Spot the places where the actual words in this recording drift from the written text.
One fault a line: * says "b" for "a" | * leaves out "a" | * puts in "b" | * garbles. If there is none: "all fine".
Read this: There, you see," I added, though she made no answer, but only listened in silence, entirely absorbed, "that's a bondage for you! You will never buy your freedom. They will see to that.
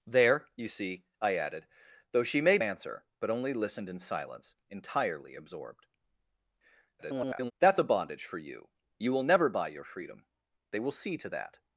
* leaves out "no"
* garbles